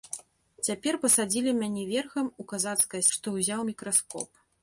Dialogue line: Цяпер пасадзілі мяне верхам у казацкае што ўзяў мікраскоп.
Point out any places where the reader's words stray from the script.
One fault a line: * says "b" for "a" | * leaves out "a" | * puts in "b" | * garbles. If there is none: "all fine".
all fine